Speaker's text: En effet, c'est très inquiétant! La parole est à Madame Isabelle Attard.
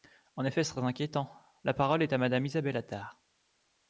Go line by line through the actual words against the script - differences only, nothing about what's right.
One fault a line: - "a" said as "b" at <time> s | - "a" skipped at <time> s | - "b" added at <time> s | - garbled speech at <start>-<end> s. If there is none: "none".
none